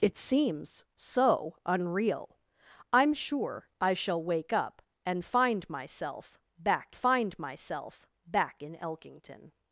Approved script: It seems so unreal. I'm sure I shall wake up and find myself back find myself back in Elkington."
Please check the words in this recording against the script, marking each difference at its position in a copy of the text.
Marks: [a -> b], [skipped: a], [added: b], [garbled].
It seems so unreal. I'm sure I shall wake up and find myself back find myself back in Elkington."